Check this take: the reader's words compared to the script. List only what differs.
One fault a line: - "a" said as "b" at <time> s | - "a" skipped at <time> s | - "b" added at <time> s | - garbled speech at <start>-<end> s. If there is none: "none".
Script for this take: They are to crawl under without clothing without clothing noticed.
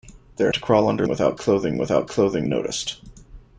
none